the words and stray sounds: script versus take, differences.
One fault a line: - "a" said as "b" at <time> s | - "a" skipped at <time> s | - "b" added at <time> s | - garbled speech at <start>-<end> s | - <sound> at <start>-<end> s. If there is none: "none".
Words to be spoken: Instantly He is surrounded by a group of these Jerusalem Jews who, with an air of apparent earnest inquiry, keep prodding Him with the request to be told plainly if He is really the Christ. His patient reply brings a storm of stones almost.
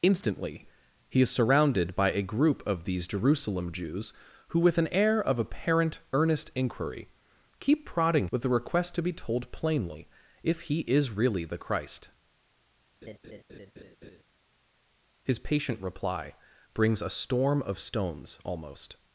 - "Him" skipped at 8.3 s
- laugh at 13.0-14.2 s